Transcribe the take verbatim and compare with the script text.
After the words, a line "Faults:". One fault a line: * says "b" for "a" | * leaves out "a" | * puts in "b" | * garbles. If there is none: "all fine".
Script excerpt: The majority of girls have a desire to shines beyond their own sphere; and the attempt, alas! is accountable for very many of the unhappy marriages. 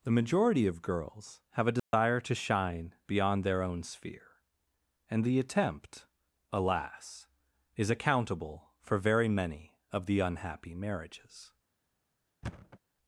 The majority of girls have a desire to shine beyond their own sphere; and the attempt, alas! is accountable for very many of the unhappy marriages.
Faults:
* says "shine" for "shines"